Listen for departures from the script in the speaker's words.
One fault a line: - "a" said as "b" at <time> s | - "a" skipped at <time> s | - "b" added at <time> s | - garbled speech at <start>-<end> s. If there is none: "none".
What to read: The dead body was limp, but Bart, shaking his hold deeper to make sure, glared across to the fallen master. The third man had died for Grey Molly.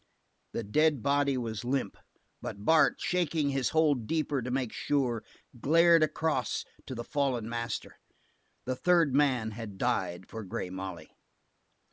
none